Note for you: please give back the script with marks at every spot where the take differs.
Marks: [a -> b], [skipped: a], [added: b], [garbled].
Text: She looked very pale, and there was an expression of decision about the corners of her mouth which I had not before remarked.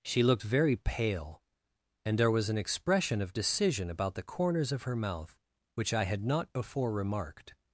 She looked very pale, and there was an expression of decision about the corners of her mouth which I had not before remarked.